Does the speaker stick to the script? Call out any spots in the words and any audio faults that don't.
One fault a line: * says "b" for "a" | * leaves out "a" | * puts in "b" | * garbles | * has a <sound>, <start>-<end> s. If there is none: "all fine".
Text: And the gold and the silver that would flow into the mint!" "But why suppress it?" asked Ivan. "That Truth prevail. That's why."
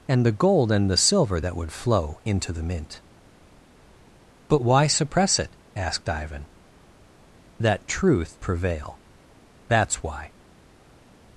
all fine